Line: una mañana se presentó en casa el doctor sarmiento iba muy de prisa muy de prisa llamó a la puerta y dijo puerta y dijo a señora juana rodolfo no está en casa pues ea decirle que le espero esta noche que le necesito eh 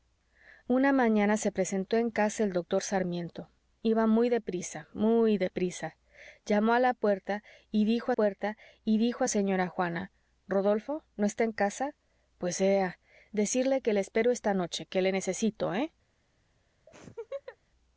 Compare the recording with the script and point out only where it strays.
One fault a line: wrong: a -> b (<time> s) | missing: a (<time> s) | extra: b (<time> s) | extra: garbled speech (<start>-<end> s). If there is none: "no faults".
no faults